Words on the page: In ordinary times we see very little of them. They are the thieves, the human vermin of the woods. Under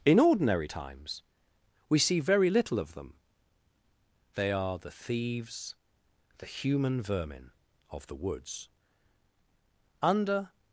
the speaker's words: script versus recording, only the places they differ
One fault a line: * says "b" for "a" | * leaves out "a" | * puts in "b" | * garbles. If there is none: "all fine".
all fine